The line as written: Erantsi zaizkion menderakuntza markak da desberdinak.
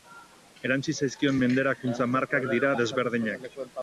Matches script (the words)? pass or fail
fail